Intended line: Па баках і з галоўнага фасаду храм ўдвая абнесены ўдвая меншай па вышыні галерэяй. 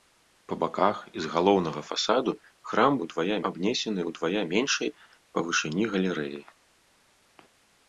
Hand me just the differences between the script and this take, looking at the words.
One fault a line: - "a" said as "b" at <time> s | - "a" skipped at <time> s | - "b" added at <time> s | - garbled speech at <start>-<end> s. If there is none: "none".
none